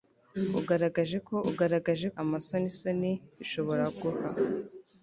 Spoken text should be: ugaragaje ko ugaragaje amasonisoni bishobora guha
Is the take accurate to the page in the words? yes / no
yes